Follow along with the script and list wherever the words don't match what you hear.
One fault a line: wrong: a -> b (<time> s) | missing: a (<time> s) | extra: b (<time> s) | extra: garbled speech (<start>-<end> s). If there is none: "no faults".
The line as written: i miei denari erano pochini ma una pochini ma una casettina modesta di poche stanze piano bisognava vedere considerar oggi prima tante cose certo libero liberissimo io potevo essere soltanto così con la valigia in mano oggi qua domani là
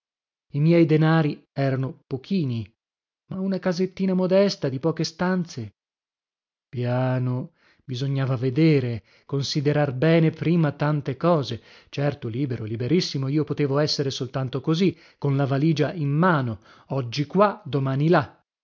missing: pochini ma una (3.6 s)
wrong: oggi -> bene (9.9 s)